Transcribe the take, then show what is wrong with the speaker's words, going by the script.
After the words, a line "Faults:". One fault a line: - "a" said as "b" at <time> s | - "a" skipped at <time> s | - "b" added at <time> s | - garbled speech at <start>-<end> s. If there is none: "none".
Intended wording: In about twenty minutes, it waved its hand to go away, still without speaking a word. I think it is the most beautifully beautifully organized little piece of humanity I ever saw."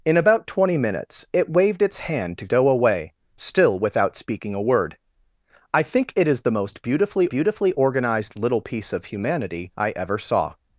In about twenty minutes, it waved its hand to go away, still without speaking a word. I think it is the most beautifully beautifully organized little piece of humanity I ever saw."
Faults:
none